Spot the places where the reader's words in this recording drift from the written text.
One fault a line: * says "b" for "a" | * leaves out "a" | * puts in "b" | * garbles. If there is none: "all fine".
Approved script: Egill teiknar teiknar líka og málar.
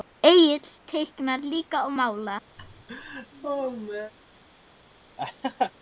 * leaves out "teiknar"